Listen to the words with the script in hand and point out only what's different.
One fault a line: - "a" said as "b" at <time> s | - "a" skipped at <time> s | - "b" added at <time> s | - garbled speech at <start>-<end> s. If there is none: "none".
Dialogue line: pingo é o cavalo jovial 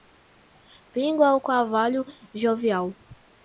none